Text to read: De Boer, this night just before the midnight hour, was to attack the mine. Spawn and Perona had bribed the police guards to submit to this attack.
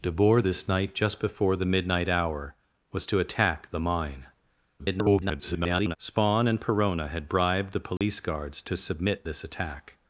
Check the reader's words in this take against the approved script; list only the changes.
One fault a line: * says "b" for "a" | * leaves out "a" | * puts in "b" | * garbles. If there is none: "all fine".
* garbles
* leaves out "to"